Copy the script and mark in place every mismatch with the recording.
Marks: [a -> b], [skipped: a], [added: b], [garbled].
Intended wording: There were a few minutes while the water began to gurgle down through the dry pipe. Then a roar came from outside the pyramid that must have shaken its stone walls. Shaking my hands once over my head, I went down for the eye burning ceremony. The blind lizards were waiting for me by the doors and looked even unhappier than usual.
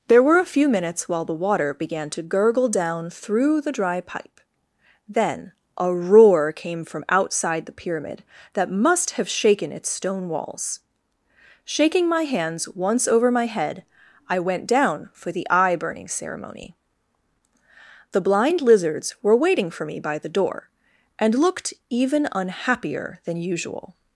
There were a few minutes while the water began to gurgle down through the dry pipe. Then a roar came from outside the pyramid that must have shaken its stone walls. Shaking my hands once over my head, I went down for the eye burning ceremony. The blind lizards were waiting for me by the [doors -> door] and looked even unhappier than usual.